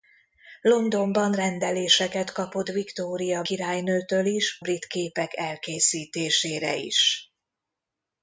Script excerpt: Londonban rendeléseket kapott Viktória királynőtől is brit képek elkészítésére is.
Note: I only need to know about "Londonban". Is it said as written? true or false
true